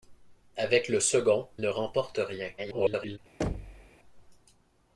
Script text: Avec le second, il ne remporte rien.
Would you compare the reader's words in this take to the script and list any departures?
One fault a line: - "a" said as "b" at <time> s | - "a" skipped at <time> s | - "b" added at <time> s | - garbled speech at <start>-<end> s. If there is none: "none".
- "il" skipped at 1.5 s
- garbled speech at 2.6-3.2 s